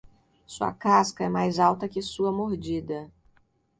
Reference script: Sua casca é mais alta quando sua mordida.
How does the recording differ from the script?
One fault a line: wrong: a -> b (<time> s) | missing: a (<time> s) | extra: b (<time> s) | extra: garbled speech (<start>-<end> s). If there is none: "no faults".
wrong: quando -> que (1.9 s)